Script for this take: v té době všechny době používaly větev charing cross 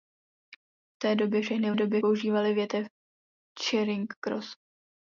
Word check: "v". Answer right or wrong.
right